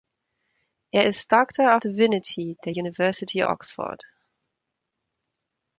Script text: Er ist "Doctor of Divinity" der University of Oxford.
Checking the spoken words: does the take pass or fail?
fail